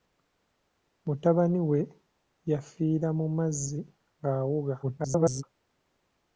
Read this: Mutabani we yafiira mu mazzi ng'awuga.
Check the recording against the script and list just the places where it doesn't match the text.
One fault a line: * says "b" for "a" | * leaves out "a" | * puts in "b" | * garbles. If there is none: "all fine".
* garbles